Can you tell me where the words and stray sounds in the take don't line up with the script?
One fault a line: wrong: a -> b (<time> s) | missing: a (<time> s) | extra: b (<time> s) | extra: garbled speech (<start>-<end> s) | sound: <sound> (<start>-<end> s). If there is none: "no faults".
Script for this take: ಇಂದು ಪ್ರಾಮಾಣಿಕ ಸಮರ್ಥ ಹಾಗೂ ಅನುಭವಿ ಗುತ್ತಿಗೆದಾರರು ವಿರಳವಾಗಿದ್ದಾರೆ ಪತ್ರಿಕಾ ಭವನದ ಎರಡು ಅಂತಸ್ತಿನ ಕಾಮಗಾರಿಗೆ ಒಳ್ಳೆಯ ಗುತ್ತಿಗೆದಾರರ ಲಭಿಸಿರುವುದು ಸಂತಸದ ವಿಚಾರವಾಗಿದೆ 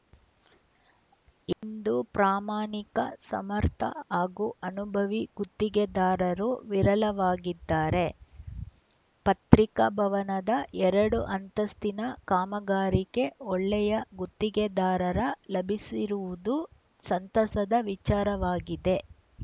sound: dropout (1.5-1.6 s)